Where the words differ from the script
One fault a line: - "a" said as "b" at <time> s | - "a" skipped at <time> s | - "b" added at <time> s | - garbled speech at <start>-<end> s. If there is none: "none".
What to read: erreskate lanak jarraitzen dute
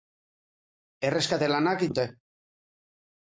- "jarraitzen" skipped at 1.9 s